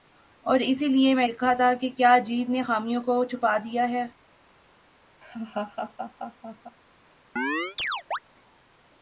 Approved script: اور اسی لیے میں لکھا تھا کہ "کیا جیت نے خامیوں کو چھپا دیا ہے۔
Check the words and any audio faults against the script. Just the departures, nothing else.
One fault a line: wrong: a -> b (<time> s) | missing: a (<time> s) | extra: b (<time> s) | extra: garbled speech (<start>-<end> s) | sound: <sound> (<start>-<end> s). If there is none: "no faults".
sound: laugh (5.2-6.8 s)
sound: chirp (7.4-8.2 s)